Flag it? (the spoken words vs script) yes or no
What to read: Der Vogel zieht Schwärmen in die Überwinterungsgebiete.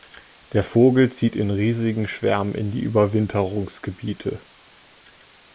yes